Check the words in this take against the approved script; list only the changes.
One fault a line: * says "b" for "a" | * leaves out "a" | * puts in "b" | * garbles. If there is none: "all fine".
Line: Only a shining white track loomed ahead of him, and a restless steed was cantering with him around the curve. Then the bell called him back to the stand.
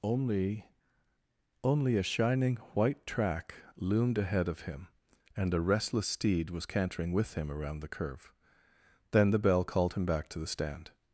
* puts in "only"